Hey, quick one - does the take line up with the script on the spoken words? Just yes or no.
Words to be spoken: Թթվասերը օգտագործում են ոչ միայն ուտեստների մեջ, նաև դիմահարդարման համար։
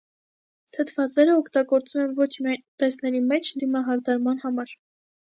no